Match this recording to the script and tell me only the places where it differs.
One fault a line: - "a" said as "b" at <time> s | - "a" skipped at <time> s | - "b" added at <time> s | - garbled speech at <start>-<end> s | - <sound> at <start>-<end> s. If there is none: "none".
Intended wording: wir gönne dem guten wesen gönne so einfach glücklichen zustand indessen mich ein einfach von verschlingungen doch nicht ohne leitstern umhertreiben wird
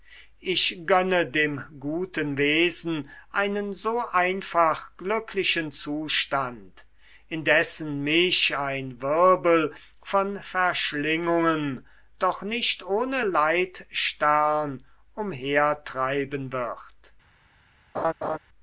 - "wir" said as "ich" at 0.4 s
- "gönne" said as "einen" at 3.3 s
- "einfach" said as "wirbel" at 9.0 s
- laugh at 17.9-18.4 s